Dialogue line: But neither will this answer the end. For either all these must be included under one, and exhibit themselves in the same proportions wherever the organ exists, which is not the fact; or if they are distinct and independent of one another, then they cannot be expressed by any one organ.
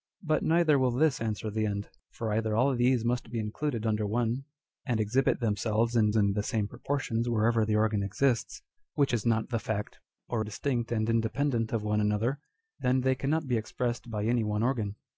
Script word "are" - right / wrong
wrong